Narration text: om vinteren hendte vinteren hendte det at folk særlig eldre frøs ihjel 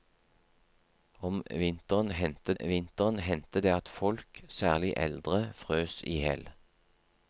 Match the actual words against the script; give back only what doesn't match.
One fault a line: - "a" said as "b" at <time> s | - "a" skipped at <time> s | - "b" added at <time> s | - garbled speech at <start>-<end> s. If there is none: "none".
none